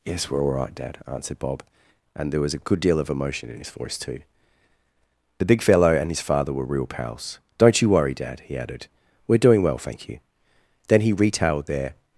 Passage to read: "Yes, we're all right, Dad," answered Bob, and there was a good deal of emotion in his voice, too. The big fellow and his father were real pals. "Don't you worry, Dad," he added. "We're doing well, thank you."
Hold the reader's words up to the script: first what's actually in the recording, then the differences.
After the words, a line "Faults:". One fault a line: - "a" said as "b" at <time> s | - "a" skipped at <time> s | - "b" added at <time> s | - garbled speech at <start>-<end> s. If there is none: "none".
"Yes, we're all right, Dad," answered Bob, and there was a good deal of emotion in his voice, too. The big fellow and his father were real pals. "Don't you worry, Dad," he added. "We're doing well, thank you." Then he retailed their
Faults:
- "Then he retailed their" added at 10.9 s